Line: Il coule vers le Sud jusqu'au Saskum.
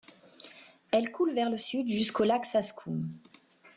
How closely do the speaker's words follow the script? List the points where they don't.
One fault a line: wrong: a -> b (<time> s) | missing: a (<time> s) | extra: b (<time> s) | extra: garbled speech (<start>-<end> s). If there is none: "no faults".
wrong: Il -> Elle (0.9 s)
extra: lac (2.2 s)